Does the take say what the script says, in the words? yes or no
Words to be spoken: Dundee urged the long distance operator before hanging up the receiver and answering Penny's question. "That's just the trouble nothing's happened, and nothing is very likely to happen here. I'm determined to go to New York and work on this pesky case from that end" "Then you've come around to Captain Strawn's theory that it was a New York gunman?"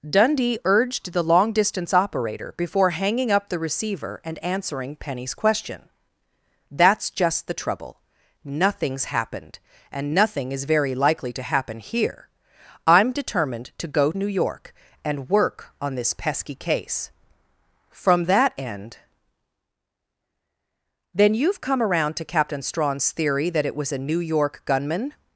no